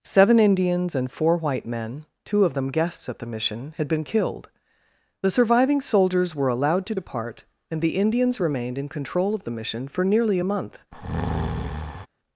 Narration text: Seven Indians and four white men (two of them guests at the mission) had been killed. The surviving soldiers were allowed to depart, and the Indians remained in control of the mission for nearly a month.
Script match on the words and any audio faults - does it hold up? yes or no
no